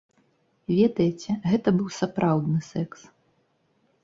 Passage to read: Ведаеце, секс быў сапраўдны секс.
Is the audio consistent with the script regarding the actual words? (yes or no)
no